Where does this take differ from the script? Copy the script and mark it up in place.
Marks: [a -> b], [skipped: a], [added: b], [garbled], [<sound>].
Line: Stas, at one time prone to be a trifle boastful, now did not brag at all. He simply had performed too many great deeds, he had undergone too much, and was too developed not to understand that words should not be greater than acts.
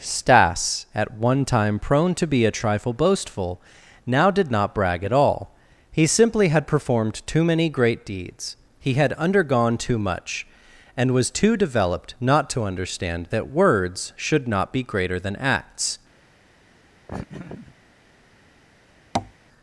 Stas, at one time prone to be a trifle boastful, now did not brag at all. He simply had performed too many great deeds, he had undergone too much, and was too developed not to understand that words should not be greater than acts. [laugh] [tap]